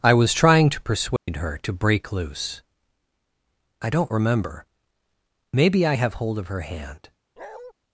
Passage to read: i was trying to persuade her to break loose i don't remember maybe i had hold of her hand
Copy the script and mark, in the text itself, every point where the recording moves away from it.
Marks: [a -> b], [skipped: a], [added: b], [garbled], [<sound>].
i was trying to persuade [dropout] her to break loose i don't remember maybe i [had -> have] hold of her hand [bark]